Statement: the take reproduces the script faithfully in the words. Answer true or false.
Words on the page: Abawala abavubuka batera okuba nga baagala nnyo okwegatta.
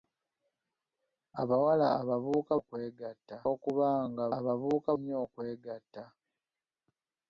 false